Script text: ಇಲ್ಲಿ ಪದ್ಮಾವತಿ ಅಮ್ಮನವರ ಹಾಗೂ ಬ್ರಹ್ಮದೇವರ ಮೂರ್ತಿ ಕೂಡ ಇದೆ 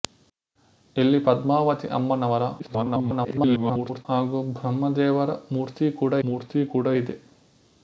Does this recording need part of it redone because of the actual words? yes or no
yes